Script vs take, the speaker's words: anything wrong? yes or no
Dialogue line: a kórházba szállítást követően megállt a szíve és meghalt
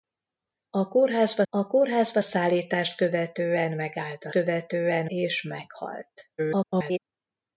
yes